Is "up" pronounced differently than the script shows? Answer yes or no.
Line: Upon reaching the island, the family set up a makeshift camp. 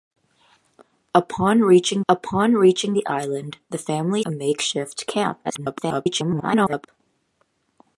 yes